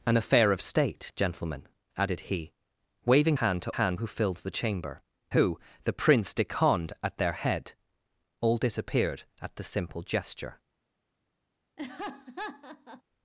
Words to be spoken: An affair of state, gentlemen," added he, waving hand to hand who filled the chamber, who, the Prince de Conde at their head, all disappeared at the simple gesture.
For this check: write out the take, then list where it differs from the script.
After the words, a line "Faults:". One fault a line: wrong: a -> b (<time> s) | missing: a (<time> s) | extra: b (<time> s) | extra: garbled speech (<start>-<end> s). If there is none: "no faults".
An affair of state, gentlemen," added he, waving hand to hand who filled the chamber, who, the Prince de Conde at their head, all disappeared at the simple gesture.
Faults:
no faults